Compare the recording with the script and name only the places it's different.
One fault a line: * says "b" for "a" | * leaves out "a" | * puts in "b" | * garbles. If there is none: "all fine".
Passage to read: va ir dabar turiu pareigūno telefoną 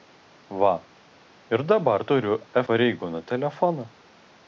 all fine